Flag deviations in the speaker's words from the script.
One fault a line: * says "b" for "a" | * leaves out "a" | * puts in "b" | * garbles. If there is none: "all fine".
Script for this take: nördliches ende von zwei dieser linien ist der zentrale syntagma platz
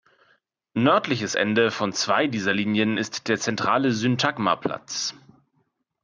all fine